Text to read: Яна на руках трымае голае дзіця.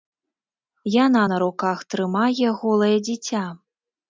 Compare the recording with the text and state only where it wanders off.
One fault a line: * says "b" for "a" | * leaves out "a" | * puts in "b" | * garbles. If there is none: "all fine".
all fine